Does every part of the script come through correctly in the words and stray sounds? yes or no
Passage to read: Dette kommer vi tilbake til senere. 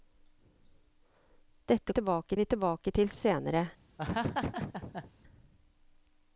no